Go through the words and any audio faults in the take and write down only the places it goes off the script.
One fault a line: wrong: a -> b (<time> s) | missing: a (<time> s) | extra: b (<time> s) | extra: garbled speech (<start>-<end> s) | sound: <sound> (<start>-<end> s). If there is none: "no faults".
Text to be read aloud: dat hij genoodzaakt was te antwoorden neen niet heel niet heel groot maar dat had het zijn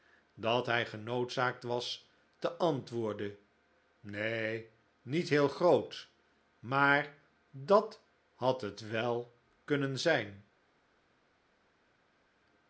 missing: niet heel (5.5 s)
extra: wel kunnen (8.9 s)